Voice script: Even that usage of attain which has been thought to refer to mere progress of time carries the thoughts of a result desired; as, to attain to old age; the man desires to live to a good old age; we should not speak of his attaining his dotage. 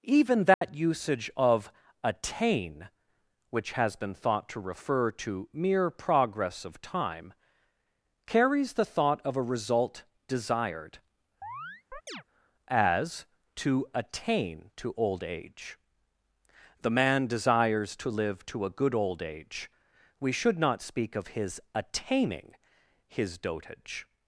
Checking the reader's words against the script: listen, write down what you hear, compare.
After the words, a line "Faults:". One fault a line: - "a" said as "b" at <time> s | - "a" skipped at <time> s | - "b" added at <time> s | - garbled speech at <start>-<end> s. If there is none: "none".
Even that usage of attain which has been thought to refer to mere progress of time carries the thought of a result desired; as, to attain to old age; the man desires to live to a good old age; we should not speak of his attaining his dotage.
Faults:
- "thoughts" said as "thought" at 8.8 s